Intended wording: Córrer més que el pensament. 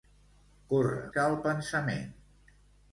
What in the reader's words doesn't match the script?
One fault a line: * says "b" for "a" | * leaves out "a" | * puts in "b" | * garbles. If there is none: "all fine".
* leaves out "més"